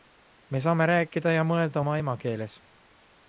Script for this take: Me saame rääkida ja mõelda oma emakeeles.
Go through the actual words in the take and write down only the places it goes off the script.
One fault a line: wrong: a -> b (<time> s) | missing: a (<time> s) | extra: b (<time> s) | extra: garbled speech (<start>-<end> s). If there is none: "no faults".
no faults